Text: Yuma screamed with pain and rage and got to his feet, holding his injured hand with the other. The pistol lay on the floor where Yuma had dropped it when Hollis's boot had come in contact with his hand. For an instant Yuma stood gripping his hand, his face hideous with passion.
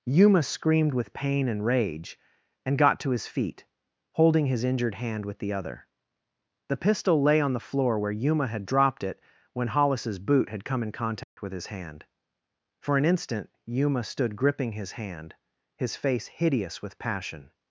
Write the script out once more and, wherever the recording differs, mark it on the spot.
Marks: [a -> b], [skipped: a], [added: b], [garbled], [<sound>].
Yuma screamed with pain and rage and got to his feet, holding his injured hand with the other. The pistol lay on the floor where Yuma had dropped it when Hollis's boot had come in contact [dropout] with his hand. For an instant Yuma stood gripping his hand, his face hideous with passion.